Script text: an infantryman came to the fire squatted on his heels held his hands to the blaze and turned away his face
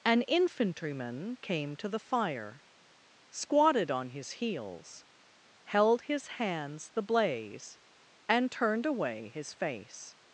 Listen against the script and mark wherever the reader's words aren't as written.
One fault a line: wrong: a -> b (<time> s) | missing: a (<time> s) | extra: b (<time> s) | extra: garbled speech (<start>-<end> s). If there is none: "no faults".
missing: to (6.9 s)